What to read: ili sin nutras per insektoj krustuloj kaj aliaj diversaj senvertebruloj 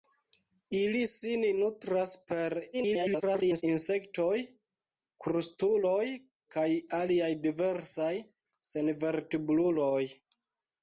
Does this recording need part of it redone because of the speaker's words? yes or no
yes